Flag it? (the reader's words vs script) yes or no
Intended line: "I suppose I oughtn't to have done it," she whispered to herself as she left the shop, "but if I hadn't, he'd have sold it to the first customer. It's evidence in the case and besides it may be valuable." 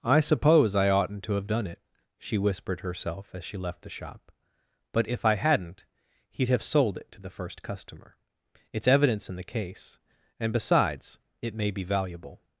yes